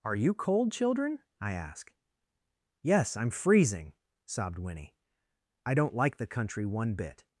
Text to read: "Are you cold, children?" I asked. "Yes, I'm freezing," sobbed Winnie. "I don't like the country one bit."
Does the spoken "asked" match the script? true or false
false